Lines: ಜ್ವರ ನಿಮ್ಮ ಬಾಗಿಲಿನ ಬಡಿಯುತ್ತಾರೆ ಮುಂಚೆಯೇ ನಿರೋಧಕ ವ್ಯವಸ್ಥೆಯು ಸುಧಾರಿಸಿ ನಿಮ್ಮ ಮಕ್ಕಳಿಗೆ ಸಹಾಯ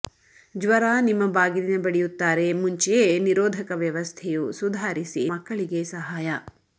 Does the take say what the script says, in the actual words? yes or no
no